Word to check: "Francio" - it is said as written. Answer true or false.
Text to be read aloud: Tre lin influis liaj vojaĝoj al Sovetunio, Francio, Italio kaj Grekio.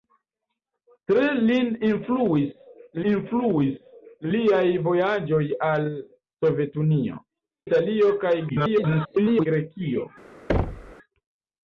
false